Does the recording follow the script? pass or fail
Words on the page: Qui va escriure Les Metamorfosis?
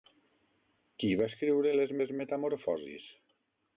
fail